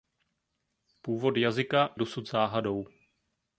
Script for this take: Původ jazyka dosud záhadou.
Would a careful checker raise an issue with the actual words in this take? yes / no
no